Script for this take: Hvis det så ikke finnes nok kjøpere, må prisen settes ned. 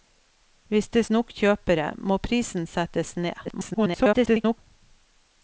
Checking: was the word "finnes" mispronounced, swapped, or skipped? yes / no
yes